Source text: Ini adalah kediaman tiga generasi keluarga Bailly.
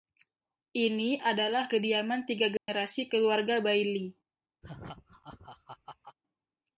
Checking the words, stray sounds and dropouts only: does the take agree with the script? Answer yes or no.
no